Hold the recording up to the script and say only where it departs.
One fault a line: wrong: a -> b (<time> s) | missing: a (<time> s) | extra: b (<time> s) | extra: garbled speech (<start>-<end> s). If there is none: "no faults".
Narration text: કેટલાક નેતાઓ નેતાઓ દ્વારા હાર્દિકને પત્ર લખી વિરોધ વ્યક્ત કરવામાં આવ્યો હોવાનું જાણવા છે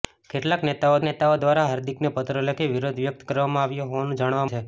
no faults